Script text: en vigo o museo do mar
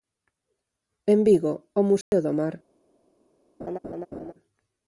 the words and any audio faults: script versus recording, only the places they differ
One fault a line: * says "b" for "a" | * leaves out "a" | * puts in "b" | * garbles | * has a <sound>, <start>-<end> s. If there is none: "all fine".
* has a dropout, 2.0-2.1 s
* has a laugh, 3.6-4.3 s